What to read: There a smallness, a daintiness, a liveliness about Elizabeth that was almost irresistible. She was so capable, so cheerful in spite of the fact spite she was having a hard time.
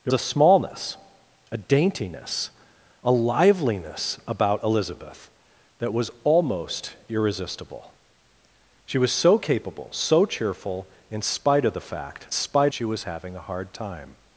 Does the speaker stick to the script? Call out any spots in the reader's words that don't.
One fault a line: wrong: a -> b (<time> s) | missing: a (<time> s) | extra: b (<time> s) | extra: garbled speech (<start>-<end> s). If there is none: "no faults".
no faults